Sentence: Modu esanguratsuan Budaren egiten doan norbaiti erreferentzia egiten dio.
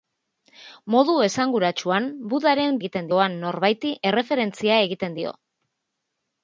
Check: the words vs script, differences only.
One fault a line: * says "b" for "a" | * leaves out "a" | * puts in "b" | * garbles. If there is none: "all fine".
all fine